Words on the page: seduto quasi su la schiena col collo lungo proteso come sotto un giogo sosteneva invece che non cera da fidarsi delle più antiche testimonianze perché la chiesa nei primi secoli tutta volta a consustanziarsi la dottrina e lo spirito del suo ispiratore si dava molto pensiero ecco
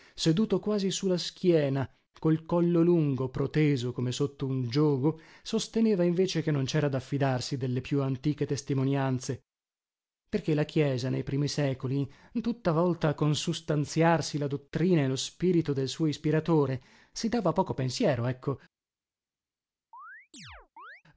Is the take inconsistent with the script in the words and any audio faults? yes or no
yes